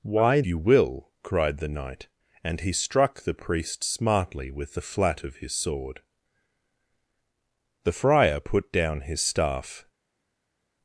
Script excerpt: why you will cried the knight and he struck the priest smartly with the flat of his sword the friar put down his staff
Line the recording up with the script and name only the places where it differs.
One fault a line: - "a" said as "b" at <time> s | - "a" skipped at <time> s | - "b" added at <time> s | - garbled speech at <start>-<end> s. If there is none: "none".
none